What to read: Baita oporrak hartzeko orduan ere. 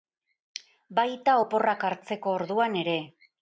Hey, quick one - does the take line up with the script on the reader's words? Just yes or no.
yes